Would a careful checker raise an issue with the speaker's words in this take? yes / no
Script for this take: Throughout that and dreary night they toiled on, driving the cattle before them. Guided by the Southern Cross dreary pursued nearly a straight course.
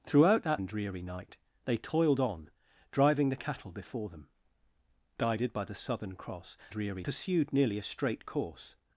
no